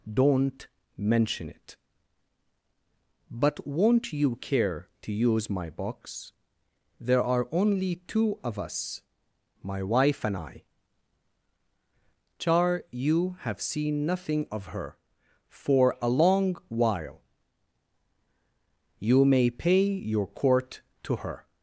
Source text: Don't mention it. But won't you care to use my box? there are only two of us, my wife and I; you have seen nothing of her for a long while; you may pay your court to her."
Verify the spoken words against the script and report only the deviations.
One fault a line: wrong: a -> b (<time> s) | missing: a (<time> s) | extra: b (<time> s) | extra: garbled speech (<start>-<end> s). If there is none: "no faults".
extra: char (12.4 s)